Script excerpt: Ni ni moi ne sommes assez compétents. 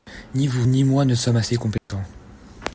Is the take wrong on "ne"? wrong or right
right